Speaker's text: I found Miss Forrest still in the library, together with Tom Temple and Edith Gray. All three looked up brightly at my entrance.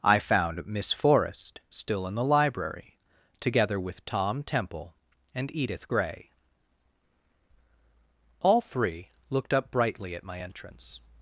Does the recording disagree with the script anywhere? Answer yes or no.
no